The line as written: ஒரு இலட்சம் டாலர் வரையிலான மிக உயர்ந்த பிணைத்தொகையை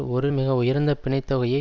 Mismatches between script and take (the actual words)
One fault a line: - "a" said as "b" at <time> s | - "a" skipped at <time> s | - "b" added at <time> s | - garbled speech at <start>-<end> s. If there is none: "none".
- "இலட்சம் டாலர் வரையிலான" skipped at 0.3 s